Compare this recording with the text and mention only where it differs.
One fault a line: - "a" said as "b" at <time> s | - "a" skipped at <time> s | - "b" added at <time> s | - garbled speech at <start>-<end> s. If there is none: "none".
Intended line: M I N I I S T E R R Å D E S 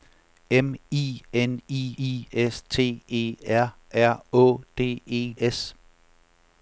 none